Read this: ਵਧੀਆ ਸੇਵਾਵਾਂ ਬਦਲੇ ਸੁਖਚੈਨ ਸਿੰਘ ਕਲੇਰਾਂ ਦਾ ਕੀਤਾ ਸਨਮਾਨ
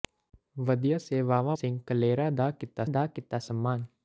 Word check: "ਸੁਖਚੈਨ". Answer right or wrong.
wrong